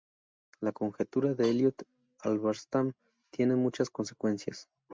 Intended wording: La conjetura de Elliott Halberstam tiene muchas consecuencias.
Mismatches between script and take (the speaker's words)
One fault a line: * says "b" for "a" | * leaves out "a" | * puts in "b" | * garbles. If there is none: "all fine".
all fine